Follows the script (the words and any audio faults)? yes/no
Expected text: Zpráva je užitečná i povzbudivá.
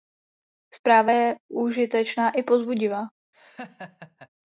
no